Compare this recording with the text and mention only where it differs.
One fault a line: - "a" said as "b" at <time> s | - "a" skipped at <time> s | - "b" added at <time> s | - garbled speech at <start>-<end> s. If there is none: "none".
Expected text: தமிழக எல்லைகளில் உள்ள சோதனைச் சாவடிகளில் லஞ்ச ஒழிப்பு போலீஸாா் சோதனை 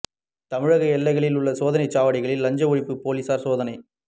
none